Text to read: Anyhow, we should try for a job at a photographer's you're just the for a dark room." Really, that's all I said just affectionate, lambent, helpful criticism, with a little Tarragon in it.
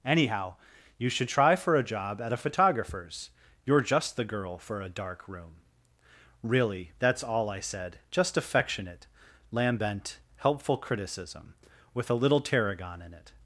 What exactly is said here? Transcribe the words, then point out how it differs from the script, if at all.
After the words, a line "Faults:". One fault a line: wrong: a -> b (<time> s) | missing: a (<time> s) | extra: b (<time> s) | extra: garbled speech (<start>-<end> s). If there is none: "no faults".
Anyhow, you should try for a job at a photographer's you're just the girl for a dark room." Really, that's all I said just affectionate, lambent, helpful criticism, with a little Tarragon in it.
Faults:
wrong: we -> you (1.0 s)
extra: girl (4.2 s)